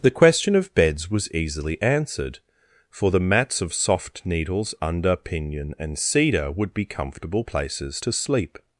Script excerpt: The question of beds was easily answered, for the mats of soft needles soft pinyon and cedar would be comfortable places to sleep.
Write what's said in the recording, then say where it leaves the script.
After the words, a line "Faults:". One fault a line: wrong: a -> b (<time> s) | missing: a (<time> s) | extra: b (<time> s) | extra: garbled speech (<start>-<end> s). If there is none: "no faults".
The question of beds was easily answered, for the mats of soft needles under pinyon and cedar would be comfortable places to sleep.
Faults:
wrong: soft -> under (4.8 s)